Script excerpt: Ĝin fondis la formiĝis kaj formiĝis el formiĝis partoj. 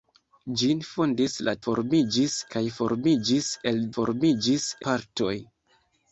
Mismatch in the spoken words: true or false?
false